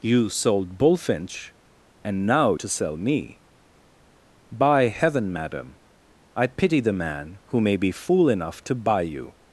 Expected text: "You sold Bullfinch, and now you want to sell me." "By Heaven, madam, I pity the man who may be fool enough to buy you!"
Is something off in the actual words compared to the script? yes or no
yes